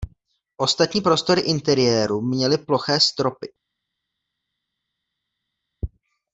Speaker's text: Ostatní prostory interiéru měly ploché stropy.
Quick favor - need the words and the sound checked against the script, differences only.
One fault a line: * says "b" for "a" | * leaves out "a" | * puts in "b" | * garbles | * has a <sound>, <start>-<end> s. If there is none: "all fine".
all fine